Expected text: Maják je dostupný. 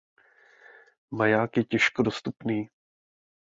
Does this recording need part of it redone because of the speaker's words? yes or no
yes